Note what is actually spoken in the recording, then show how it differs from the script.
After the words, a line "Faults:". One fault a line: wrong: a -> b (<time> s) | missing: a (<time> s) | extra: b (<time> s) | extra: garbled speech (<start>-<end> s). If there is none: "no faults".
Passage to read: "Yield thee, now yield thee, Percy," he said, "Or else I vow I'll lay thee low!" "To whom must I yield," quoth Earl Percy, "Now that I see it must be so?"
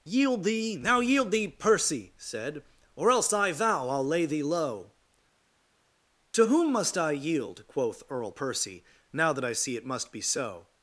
"Yield thee, now yield thee, Percy," said, "Or else I vow I'll lay thee low!" "To whom must I yield," quoth Earl Percy, "Now that I see it must be so?"
Faults:
missing: he (2.1 s)